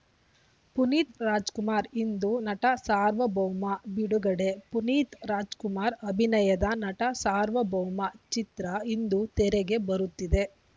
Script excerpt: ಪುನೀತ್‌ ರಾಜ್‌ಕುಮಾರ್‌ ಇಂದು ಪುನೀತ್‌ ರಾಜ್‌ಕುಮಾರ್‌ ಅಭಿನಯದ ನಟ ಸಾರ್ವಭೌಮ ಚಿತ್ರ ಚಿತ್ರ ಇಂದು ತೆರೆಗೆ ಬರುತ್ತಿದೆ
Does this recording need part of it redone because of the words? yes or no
yes